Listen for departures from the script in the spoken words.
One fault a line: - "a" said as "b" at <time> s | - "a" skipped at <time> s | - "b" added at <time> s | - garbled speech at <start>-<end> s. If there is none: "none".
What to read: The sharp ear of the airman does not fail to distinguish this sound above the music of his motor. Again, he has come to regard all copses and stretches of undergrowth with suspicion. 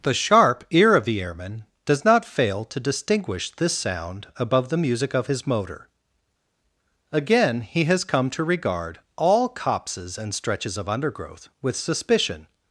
none